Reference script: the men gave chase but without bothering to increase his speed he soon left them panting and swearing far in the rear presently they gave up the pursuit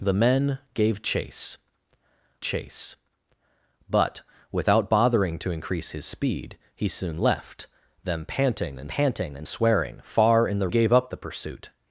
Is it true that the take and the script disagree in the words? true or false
true